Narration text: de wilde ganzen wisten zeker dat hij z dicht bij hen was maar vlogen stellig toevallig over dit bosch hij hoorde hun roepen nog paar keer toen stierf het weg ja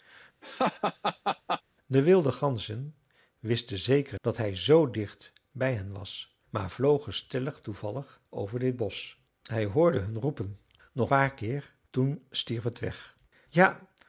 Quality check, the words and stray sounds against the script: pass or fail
fail